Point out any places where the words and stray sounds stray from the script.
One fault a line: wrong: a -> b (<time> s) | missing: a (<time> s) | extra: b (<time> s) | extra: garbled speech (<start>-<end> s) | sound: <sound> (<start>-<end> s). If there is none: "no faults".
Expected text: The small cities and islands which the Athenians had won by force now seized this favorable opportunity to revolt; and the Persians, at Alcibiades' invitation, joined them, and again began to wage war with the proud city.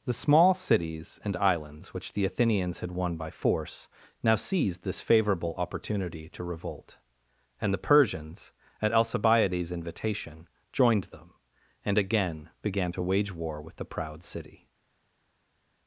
no faults